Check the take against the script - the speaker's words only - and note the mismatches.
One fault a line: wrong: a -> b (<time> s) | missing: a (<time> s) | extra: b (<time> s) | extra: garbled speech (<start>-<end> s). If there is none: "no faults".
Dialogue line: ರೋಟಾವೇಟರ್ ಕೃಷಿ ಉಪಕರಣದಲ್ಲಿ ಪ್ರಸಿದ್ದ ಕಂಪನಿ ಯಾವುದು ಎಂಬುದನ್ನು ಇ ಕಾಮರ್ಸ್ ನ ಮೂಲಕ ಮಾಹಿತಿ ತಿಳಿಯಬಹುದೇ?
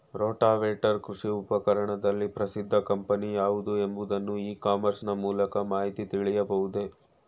no faults